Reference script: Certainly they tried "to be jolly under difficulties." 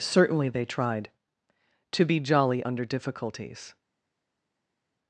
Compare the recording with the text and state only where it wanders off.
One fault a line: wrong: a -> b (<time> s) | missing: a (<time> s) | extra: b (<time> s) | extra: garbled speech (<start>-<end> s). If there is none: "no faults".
no faults